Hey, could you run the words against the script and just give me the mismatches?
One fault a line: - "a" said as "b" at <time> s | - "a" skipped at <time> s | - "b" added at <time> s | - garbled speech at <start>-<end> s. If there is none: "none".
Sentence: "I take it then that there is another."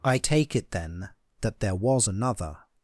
- "is" said as "was" at 1.8 s